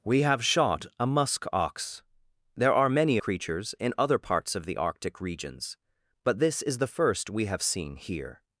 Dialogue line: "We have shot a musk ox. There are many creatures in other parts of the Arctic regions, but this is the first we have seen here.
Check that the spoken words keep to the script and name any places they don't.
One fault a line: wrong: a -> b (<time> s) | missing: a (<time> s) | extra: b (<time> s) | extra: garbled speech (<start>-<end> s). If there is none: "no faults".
no faults